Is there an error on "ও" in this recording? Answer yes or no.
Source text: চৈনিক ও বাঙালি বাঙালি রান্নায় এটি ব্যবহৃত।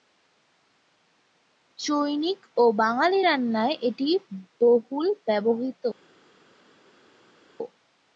no